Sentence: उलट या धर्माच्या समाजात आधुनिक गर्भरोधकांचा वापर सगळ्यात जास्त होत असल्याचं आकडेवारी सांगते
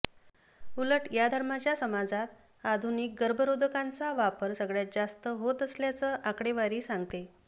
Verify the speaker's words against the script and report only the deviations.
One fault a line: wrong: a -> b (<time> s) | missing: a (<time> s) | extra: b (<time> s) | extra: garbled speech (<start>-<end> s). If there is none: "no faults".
no faults